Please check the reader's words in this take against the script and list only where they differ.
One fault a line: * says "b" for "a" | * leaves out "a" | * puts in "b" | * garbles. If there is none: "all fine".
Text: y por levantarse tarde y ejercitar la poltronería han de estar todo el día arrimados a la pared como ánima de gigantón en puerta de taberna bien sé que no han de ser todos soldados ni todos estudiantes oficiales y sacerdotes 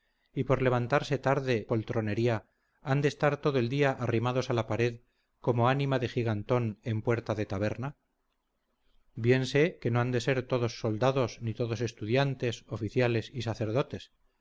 * leaves out "y ejercitar la"